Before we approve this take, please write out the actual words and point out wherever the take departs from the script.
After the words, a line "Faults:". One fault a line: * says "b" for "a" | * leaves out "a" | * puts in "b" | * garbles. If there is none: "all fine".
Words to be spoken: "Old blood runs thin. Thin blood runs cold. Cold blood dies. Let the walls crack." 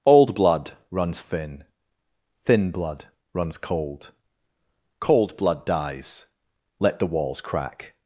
"Old blood runs thin. Thin blood runs cold. Cold blood dies. Let the walls crack."
Faults:
all fine